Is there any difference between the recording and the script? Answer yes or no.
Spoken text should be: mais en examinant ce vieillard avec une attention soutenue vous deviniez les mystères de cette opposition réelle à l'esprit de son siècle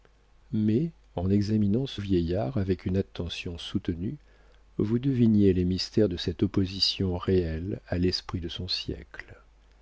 no